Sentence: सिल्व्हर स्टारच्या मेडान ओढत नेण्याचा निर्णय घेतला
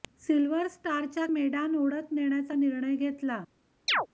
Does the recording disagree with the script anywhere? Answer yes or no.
no